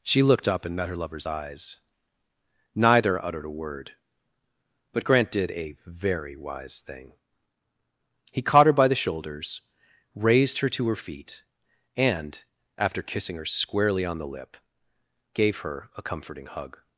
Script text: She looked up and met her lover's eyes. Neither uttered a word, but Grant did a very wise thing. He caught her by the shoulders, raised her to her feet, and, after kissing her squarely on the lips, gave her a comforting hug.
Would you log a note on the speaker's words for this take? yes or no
yes